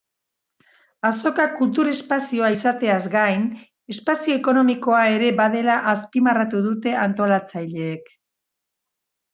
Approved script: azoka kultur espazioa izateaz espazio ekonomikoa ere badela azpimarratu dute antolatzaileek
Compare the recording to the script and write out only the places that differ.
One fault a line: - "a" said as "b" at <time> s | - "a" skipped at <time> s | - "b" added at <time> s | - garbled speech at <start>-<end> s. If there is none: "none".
- "gain" added at 3.2 s